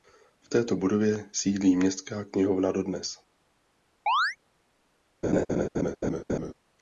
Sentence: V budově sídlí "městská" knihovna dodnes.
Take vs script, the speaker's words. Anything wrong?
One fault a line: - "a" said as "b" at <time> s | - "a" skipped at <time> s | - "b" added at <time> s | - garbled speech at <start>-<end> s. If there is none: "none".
- "této" added at 0.5 s